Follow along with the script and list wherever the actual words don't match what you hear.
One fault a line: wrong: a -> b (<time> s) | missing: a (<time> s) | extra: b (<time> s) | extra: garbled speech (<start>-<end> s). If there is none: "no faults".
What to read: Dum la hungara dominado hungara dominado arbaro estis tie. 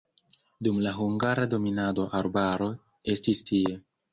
missing: hungara dominado (2.1 s)